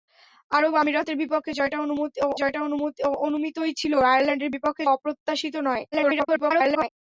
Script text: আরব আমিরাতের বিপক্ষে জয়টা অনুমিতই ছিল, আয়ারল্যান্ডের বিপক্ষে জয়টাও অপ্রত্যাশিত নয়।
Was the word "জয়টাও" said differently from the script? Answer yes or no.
yes